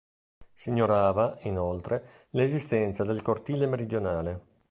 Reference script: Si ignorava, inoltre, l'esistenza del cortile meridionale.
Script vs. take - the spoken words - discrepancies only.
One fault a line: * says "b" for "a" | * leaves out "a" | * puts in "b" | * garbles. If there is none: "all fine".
all fine